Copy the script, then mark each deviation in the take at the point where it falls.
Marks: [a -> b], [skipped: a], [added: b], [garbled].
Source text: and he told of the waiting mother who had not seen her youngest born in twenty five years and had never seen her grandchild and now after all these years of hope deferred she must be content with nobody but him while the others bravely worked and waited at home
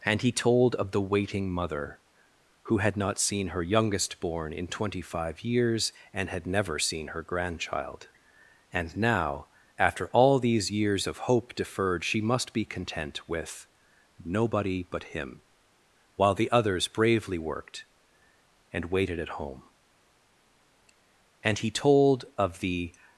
and he told of the waiting mother who had not seen her youngest born in twenty five years and had never seen her grandchild and now after all these years of hope deferred she must be content with nobody but him while the others bravely worked and waited at home [added: and he told of the]